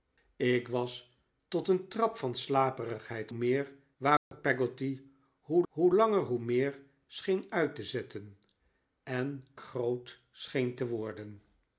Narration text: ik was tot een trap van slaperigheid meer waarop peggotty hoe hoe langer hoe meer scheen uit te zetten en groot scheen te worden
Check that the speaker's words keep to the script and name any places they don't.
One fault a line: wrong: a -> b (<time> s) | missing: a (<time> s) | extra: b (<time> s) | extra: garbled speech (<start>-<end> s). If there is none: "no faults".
no faults